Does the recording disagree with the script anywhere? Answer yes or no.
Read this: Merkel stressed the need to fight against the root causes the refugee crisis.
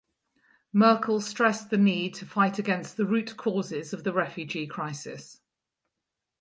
yes